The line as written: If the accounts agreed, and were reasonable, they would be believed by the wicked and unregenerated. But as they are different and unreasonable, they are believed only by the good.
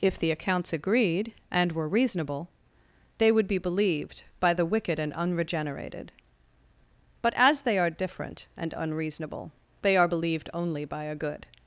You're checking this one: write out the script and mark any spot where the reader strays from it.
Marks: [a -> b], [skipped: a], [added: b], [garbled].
If the accounts agreed, and were reasonable, they would be believed by the wicked and unregenerated. But as they are different and unreasonable, they are believed only by [the -> a] good.